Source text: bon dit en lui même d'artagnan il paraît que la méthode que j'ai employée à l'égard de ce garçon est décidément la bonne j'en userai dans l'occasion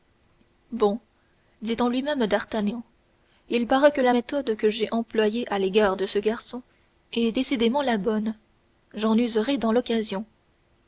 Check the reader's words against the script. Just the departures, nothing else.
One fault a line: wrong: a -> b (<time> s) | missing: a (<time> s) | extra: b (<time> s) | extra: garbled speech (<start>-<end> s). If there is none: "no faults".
no faults